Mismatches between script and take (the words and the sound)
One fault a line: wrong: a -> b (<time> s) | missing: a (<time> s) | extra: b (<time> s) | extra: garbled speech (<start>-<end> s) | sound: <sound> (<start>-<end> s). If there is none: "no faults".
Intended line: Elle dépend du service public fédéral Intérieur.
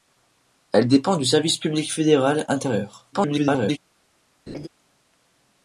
extra: garbled speech (3.1-3.8 s)
sound: laugh (4.5-4.7 s)